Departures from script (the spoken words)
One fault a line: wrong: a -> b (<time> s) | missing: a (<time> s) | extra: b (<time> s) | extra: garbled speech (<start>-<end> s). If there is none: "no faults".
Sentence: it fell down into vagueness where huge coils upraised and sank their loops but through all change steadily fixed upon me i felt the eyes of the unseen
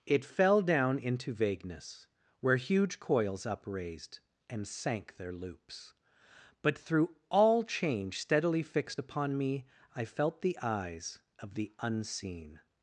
no faults